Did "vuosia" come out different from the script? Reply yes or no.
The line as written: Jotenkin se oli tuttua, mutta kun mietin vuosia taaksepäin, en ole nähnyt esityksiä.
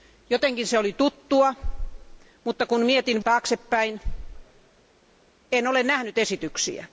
yes